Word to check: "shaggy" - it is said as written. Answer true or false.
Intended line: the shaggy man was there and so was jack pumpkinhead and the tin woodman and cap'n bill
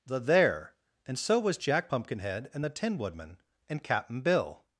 false